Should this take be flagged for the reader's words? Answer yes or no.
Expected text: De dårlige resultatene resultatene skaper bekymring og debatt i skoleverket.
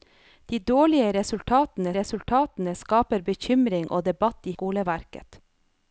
no